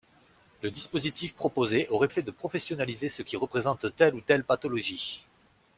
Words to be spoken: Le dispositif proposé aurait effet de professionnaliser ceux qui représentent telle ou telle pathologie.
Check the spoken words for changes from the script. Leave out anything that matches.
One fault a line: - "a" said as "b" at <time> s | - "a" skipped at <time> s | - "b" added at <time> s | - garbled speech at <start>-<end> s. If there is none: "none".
none